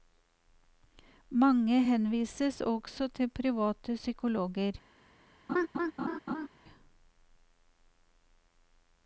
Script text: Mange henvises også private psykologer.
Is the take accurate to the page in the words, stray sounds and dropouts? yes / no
no